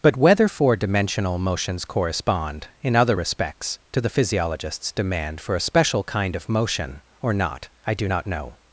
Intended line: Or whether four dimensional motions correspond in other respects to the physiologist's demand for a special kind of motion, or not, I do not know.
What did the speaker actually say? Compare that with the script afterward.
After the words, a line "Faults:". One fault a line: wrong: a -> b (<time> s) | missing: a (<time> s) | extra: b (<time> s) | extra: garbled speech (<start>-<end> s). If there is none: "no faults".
But whether four dimensional motions correspond in other respects to the physiologist's demand for a special kind of motion, or not, I do not know.
Faults:
wrong: Or -> But (0.0 s)